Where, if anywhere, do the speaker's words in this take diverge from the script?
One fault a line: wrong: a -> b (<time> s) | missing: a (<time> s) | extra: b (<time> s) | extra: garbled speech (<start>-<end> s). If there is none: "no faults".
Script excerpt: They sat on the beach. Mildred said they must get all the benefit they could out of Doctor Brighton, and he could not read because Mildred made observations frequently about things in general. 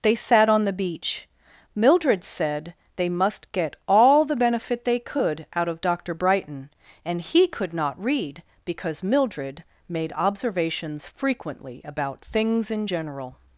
no faults